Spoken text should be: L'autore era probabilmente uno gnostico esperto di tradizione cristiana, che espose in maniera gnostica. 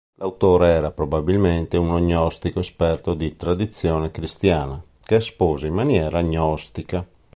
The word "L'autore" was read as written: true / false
true